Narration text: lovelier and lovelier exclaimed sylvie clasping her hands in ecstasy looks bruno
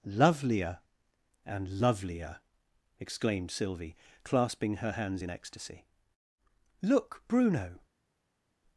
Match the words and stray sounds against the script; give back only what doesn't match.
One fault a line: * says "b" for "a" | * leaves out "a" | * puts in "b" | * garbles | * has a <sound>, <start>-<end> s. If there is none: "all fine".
* says "look" for "looks"